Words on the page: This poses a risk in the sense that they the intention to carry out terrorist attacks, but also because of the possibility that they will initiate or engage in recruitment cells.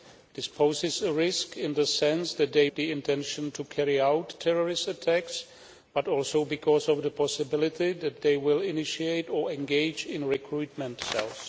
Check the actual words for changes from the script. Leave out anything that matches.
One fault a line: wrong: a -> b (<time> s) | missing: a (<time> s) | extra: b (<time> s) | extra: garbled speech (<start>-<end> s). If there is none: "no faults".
no faults